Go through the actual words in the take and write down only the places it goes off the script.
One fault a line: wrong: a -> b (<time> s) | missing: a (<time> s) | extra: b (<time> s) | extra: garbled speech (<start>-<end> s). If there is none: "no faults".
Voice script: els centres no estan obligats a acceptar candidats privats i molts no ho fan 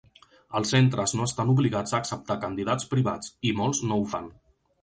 no faults